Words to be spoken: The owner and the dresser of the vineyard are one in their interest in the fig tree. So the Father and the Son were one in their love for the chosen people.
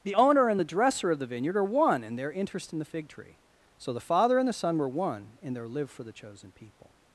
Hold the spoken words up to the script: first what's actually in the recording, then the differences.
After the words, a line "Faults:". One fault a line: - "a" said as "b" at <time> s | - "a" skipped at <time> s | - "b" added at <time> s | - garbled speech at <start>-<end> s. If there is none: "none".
The owner and the dresser of the vineyard are one in their interest in the fig tree. So the Father and the Son were one in their live for the chosen people.
Faults:
- "love" said as "live" at 5.7 s